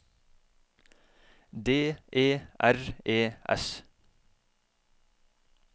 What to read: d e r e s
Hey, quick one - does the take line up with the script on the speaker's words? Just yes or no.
yes